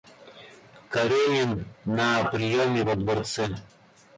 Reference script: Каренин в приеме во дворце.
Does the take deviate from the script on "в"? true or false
true